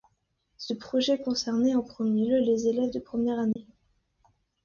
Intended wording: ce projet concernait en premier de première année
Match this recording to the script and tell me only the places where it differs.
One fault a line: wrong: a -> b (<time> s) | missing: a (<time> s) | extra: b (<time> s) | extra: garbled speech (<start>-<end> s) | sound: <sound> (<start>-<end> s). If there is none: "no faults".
extra: lieu les élèves (2.3 s)
sound: dropout (3.5-3.6 s)